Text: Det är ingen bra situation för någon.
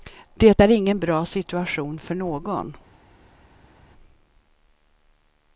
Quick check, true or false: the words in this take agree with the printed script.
true